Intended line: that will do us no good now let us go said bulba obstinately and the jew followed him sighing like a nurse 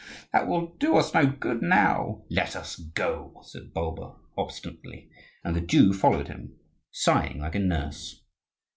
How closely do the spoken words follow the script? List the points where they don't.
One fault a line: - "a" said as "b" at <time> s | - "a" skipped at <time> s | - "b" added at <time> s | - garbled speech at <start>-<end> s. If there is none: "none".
none